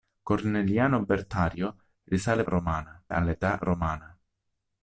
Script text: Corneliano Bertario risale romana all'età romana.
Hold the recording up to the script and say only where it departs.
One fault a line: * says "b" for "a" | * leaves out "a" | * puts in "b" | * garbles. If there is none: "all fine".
all fine